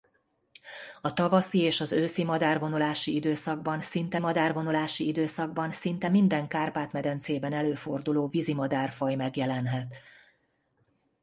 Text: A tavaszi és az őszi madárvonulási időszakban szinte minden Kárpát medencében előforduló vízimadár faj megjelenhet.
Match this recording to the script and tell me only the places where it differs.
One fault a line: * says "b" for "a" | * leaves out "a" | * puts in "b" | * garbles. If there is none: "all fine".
* puts in "madárvonulási időszakban szinte"